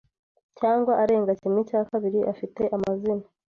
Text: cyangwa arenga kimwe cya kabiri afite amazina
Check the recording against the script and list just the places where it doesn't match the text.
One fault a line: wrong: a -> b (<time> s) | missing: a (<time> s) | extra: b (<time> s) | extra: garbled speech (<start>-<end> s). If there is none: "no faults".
no faults